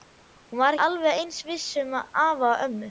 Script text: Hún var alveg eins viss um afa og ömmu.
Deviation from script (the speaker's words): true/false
false